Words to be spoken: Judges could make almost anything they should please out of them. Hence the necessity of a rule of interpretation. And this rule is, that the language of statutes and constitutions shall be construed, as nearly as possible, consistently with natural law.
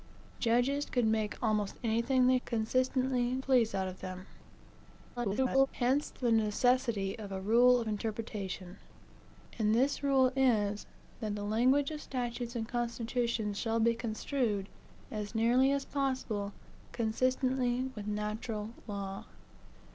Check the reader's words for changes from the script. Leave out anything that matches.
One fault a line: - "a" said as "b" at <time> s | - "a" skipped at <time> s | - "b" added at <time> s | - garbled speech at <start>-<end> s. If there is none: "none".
- "should" said as "consistently" at 2.5 s
- garbled speech at 5.2-5.7 s